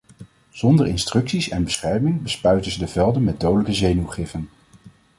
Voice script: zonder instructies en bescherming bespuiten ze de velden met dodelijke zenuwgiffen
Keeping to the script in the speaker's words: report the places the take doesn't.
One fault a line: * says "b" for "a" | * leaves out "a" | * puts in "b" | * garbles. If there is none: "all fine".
all fine